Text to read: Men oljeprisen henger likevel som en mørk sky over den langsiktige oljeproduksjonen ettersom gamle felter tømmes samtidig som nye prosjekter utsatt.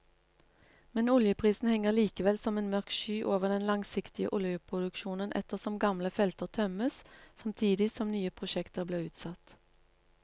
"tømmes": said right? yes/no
yes